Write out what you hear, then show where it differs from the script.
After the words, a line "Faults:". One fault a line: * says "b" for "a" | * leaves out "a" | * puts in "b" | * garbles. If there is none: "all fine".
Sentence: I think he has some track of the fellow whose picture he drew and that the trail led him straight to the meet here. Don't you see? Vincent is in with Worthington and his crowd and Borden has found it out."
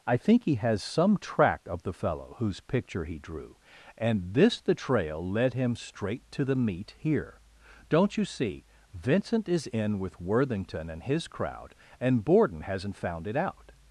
I think he has some track of the fellow whose picture he drew and this the trail led him straight to the meet here. Don't you see? Vincent is in with Worthington and his crowd and Borden hasn't found it out."
Faults:
* says "this" for "that"
* says "hasn't" for "has"